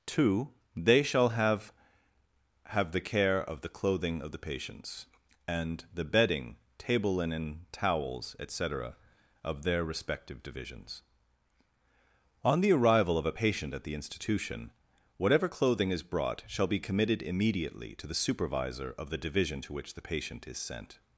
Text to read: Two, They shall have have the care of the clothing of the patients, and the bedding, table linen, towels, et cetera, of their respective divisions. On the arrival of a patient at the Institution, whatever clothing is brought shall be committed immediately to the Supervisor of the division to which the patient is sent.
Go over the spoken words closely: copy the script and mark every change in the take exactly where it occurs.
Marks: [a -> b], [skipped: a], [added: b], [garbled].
Two, They shall have have the care of the clothing of the patients, and the bedding, table linen, towels, et cetera, of their respective divisions. On the arrival of a patient at the Institution, whatever clothing is brought shall be committed immediately to the Supervisor of the division to which the patient is sent.